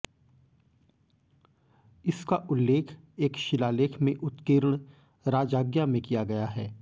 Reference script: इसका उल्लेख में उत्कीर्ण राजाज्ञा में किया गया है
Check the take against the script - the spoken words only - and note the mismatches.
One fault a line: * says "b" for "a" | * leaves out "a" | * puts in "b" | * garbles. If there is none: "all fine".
* puts in "एक शिलालेख"